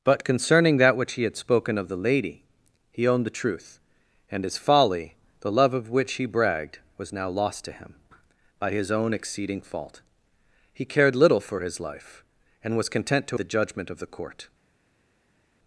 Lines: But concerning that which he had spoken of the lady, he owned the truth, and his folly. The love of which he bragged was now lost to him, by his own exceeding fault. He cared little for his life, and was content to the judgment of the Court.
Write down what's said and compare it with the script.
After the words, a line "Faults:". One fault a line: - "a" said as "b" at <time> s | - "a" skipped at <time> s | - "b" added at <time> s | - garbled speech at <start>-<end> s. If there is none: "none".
But concerning that which he had spoken of the lady, he owned the truth, and his folly. The love of which he bragged was now lost to him, by his own exceeding fault. He cared little for his life, and was content to the judgment of the Court.
Faults:
none